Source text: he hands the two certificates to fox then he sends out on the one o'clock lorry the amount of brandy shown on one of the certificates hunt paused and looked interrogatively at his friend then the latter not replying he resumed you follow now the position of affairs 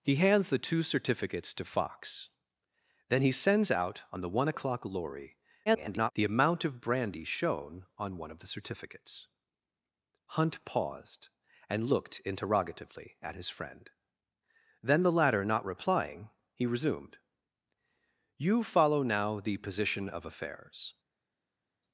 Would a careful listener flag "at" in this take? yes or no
no